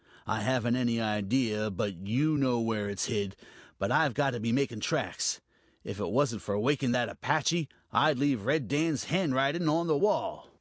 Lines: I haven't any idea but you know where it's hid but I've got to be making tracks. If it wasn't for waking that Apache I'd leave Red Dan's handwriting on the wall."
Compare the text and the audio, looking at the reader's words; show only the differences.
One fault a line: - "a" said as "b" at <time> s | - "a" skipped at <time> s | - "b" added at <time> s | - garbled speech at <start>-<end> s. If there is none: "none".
none